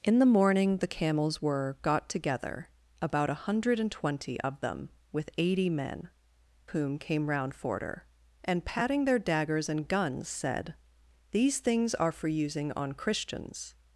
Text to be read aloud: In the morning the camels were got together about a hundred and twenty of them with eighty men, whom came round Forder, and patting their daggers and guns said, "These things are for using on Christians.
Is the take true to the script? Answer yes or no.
yes